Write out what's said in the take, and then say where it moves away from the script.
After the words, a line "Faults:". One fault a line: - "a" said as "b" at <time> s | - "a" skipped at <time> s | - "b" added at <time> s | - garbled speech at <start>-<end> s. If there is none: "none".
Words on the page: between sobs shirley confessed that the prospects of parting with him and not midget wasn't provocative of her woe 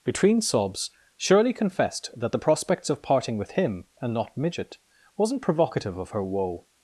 between sobs shirley confessed that the prospects of parting with him and not midget wasn't provocative of her woe
Faults:
none